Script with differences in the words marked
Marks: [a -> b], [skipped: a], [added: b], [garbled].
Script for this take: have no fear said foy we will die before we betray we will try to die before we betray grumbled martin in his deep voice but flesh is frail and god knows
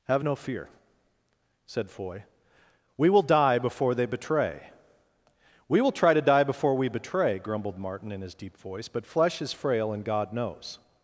have no fear said foy we will die before [we -> they] betray we will try to die before we betray grumbled martin in his deep voice but flesh is frail and god knows